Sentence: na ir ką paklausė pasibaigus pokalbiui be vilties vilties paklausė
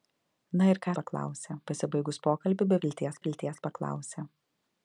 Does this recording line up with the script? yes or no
yes